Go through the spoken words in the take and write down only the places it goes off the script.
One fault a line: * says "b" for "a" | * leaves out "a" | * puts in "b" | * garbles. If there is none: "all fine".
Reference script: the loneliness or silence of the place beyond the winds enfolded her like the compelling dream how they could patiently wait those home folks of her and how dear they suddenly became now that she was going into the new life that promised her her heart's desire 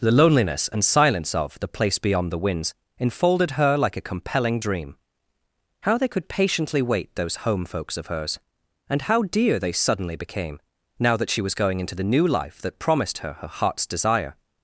* says "and" for "or"
* says "a" for "the"
* says "hers" for "her"